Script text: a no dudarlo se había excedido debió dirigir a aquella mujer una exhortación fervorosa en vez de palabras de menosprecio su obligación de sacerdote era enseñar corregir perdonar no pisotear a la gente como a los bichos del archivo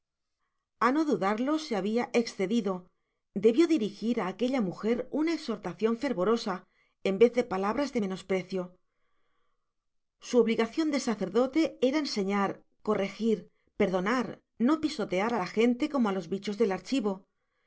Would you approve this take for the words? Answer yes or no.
yes